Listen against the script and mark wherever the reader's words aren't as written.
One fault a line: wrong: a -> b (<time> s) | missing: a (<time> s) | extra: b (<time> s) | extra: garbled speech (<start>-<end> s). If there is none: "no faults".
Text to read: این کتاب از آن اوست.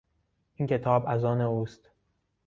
no faults